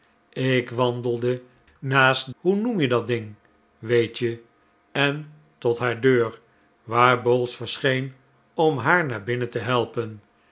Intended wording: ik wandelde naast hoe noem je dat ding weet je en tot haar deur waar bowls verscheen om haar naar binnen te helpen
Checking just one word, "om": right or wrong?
right